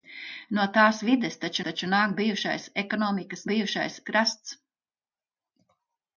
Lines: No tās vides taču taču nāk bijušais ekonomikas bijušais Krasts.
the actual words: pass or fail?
pass